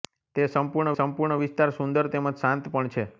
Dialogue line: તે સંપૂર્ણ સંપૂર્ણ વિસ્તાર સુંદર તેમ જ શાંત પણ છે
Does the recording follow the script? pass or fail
pass